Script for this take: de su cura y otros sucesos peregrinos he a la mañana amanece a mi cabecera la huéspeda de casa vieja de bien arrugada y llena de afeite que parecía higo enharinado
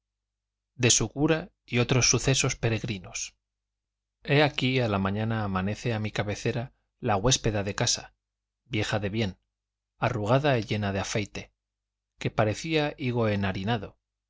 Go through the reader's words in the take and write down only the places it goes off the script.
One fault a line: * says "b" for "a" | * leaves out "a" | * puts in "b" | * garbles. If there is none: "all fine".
* puts in "aquí"